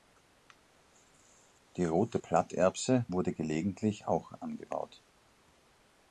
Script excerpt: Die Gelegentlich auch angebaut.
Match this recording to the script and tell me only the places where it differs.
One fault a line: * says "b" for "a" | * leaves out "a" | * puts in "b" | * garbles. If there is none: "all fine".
* puts in "Rote Platterbse wurde"